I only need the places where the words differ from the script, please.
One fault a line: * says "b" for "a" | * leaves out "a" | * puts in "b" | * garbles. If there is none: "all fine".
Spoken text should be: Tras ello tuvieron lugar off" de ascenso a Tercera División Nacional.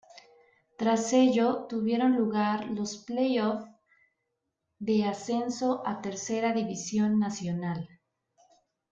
* puts in "los play"